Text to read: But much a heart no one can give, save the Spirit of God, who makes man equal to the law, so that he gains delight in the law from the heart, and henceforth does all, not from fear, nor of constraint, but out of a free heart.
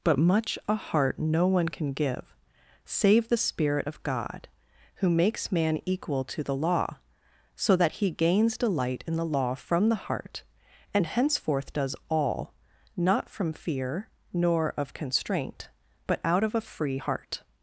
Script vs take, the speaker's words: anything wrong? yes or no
no